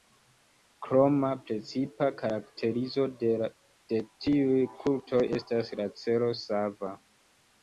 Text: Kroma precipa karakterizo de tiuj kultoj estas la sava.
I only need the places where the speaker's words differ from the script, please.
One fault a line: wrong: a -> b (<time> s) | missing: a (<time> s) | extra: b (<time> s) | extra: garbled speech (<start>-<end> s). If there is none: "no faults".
extra: celo (6.0 s)